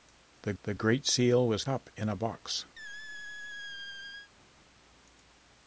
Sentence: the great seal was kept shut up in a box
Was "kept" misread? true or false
true